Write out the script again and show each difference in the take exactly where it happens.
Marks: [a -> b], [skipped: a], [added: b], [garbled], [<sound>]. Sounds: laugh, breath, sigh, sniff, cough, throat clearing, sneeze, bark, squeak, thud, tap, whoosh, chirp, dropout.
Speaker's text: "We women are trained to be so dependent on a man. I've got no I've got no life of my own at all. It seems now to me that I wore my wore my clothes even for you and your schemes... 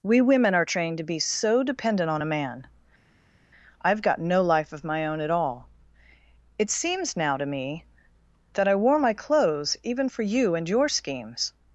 "We women are trained to be so dependent on a man. I've got no [skipped: I've got no] life of my own at all. It seems now to me that I wore my [skipped: wore my] clothes even for you and your schemes...